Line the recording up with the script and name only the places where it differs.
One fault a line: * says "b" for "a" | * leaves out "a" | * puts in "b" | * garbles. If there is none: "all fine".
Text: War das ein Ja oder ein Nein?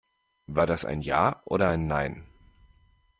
all fine